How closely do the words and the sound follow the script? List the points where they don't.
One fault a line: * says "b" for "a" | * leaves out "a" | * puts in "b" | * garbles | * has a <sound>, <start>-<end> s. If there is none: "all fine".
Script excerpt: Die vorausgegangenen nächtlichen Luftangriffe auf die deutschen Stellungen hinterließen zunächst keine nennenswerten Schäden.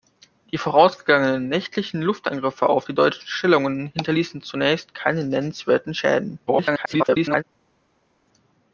* garbles